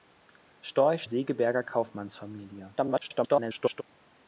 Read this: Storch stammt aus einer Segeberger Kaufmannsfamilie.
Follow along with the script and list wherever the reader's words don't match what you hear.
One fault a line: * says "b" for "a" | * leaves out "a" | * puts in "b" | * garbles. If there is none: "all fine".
* leaves out "stammt aus einer"
* garbles